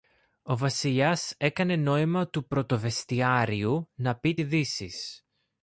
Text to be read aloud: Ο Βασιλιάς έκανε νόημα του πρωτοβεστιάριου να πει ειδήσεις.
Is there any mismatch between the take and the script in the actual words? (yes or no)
no